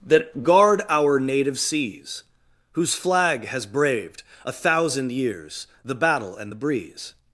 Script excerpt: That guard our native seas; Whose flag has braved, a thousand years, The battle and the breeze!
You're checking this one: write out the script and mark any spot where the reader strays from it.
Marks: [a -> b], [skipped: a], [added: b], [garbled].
That guard our native seas; Whose flag has braved, a thousand years, The battle and the breeze!